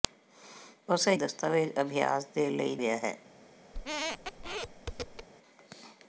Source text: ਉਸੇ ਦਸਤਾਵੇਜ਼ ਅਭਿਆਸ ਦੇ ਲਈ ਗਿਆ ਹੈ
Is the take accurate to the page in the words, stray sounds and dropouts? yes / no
no